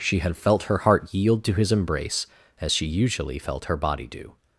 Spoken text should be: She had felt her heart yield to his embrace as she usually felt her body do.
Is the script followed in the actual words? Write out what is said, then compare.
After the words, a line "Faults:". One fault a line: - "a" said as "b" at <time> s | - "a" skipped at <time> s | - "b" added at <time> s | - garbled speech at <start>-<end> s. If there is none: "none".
She had felt her heart yield to his embrace as she usually felt her body do.
Faults:
none